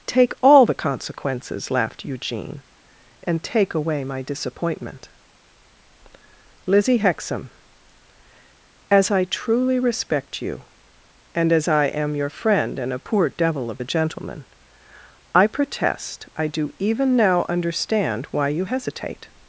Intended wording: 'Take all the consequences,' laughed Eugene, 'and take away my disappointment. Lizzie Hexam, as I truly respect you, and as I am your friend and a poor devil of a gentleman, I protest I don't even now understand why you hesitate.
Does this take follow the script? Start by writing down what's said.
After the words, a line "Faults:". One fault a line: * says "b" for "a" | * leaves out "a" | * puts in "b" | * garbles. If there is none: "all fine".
'Take all the consequences,' laughed Eugene, 'and take away my disappointment. Lizzie Hexam, as I truly respect you, and as I am your friend and a poor devil of a gentleman, I protest I do even now understand why you hesitate.
Faults:
* says "do" for "don't"